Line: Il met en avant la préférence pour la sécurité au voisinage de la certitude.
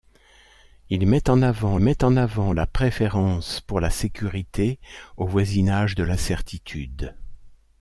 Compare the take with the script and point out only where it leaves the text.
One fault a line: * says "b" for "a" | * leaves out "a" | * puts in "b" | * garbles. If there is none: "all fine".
* puts in "met en avant"